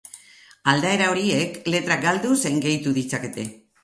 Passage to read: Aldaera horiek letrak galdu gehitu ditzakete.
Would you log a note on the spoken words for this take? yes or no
yes